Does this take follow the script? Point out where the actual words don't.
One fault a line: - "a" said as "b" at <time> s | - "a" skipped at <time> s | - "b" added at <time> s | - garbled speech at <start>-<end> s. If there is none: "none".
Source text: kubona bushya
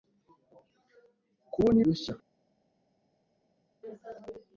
none